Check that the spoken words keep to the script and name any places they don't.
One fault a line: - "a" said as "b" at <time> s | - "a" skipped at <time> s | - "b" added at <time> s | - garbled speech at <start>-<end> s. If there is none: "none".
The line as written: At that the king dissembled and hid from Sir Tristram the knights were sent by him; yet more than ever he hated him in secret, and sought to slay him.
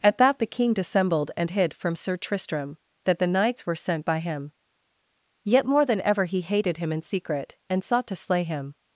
- "that" added at 3.0 s